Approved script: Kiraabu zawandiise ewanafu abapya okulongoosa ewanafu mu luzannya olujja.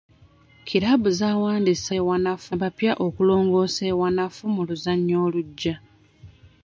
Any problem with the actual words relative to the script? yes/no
no